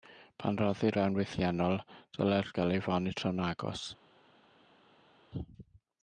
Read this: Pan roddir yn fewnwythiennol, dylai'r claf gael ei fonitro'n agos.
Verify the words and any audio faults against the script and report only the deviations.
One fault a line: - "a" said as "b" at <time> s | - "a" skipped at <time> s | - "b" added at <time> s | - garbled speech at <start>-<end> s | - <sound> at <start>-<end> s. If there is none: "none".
- "yn" skipped at 0.9 s
- "claf" skipped at 2.5 s